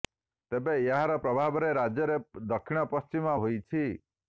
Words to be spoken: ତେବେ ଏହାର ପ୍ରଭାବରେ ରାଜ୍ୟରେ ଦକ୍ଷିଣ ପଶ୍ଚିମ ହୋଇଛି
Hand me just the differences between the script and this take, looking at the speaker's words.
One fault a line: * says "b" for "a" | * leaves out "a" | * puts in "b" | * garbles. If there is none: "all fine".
all fine